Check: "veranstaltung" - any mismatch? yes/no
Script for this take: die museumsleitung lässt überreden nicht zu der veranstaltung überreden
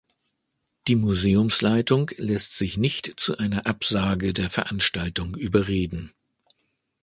no